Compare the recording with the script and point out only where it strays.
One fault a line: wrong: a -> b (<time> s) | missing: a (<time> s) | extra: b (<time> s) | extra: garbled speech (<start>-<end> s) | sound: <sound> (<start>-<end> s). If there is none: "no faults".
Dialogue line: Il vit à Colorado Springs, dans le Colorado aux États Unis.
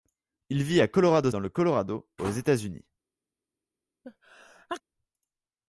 missing: Springs (1.3 s)
sound: sneeze (4.0-4.8 s)